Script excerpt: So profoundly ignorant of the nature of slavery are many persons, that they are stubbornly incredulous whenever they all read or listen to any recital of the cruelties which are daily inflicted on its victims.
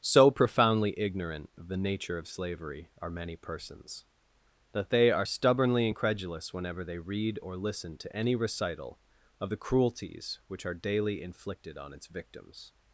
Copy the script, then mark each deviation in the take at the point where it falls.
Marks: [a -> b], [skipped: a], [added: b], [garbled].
So profoundly ignorant of the nature of slavery are many persons, that they are stubbornly incredulous whenever they [skipped: all] read or listen to any recital of the cruelties which are daily inflicted on its victims.